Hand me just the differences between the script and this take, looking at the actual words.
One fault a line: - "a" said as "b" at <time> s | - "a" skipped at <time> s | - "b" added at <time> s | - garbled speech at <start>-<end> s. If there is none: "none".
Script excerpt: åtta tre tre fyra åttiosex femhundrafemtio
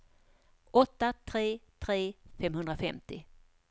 - "fyra åttiosex" skipped at 2.1 s